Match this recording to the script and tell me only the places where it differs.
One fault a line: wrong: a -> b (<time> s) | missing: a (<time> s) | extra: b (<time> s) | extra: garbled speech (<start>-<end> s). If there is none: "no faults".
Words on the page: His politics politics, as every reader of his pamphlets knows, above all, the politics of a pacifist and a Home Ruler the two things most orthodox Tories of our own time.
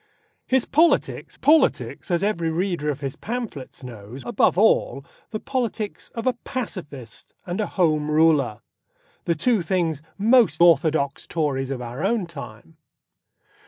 no faults